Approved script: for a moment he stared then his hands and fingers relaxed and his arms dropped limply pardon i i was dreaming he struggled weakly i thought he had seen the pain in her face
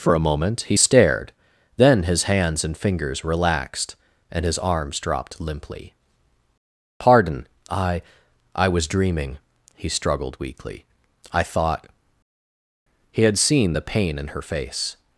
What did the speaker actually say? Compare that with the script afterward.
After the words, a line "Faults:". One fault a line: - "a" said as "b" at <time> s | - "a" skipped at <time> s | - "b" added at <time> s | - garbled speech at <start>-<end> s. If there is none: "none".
for a moment he stared then his hands and fingers relaxed and his arms dropped limply pardon i i was dreaming he struggled weakly i thought he had seen the pain in her face
Faults:
none